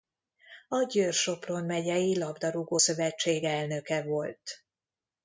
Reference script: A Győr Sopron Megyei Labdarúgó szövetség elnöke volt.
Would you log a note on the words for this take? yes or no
no